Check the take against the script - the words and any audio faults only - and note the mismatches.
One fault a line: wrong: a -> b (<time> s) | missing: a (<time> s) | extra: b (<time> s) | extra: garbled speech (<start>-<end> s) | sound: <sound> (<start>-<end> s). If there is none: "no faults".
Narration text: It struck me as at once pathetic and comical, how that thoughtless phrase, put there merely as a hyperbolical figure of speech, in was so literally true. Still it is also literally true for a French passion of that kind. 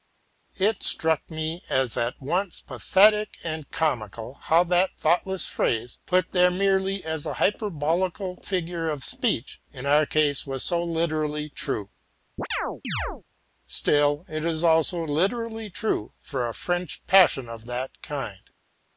extra: our case (9.9 s)
sound: chirp (12.4-13.2 s)